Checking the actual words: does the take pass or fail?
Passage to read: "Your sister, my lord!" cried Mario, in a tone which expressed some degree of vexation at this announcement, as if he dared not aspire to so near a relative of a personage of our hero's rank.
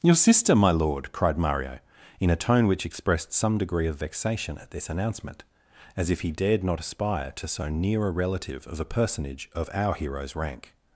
pass